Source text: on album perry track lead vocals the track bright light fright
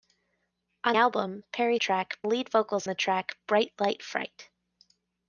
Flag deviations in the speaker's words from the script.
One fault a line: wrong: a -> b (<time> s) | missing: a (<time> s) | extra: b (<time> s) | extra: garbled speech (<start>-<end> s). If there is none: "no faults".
no faults